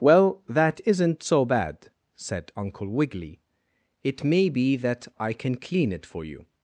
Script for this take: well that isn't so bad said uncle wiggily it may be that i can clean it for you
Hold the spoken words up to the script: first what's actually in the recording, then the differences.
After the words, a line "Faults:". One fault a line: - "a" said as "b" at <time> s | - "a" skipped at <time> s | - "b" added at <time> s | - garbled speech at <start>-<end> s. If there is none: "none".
well that isn't so bad said uncle wiggily it may be that i can clean it for you
Faults:
none